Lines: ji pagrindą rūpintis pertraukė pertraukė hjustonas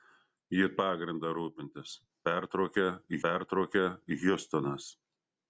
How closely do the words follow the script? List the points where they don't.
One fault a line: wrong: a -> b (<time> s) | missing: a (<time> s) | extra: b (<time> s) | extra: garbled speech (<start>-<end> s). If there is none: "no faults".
no faults